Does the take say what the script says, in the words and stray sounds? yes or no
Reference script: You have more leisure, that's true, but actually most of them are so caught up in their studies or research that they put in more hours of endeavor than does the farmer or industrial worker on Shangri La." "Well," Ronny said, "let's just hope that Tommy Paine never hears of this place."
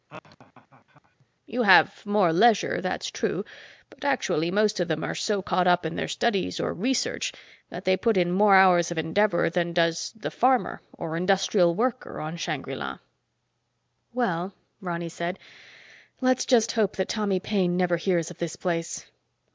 no